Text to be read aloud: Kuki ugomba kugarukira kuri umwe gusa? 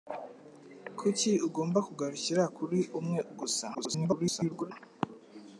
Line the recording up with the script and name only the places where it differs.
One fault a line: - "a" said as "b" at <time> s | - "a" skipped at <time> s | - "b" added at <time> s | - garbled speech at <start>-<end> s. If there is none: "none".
- garbled speech at 3.7-4.7 s